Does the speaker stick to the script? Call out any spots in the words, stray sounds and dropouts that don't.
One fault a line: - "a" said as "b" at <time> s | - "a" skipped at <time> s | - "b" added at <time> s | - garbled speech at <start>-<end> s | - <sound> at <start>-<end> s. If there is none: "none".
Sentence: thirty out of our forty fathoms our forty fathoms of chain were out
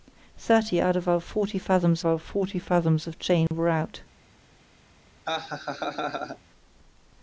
- dropout at 3.5-3.5 s
- laugh at 5.2-6.4 s